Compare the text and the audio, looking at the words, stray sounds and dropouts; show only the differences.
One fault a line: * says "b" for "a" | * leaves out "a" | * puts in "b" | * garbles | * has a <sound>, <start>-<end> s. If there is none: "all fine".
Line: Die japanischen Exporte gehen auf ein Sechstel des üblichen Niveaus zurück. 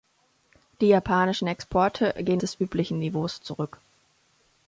* leaves out "auf ein Sechstel"